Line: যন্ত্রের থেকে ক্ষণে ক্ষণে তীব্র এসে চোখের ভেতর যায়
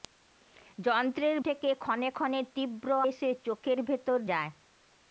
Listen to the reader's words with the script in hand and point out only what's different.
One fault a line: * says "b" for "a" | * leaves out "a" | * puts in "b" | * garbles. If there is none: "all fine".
all fine